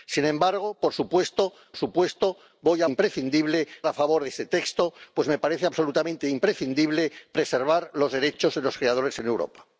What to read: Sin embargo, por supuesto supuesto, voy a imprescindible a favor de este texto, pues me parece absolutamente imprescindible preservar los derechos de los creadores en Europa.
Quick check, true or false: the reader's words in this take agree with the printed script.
true